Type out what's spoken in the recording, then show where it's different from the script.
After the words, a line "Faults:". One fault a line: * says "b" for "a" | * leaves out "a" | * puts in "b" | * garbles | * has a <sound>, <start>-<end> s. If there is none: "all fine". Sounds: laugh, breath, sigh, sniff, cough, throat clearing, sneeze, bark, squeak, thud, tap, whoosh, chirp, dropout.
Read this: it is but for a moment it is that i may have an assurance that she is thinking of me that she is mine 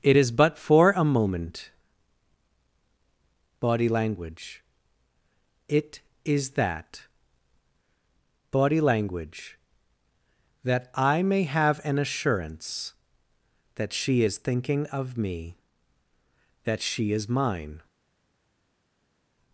it is but for a moment body language it is that body language that i may have an assurance that she is thinking of me that she is mine
Faults:
* puts in "body language"
* puts in "body language that"